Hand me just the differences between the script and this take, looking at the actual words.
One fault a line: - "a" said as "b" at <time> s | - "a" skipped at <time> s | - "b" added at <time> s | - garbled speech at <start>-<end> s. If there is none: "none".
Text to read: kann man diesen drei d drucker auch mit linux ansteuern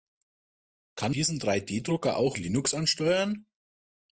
- "man" skipped at 1.1 s
- "mit" skipped at 2.4 s